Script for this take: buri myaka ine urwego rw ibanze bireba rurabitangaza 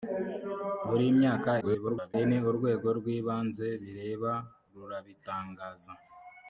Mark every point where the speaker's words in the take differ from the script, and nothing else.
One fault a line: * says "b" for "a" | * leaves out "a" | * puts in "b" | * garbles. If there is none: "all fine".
* garbles